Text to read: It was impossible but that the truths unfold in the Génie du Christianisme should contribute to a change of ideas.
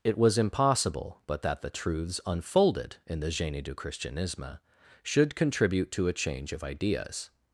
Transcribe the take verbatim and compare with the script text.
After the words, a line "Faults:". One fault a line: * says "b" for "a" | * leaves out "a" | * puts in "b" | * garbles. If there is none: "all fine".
It was impossible but that the truths unfolded in the Génie du Christianisme should contribute to a change of ideas.
Faults:
* says "unfolded" for "unfold"